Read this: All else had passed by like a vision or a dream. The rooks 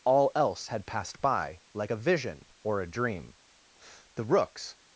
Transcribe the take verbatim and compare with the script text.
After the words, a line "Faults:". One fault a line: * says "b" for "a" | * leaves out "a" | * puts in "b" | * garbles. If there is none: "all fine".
All else had passed by like a vision or a dream. The rooks
Faults:
all fine